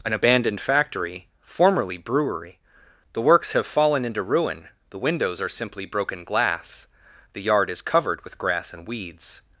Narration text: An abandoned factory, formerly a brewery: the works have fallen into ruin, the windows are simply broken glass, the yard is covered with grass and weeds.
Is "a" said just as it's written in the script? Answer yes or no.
no